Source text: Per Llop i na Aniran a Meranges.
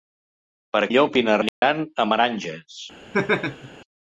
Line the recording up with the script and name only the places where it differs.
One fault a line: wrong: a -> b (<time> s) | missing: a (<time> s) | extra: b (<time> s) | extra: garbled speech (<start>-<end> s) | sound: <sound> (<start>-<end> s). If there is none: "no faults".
sound: dropout (1.5-1.6 s)
sound: laugh (3.1-3.7 s)